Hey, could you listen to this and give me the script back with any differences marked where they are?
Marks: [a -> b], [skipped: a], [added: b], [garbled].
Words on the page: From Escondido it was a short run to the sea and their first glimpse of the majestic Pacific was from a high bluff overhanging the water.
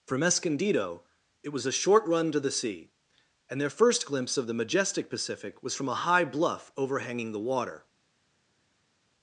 From Escondido it was a short run to the sea and their first glimpse of the majestic Pacific was from a high bluff overhanging the water.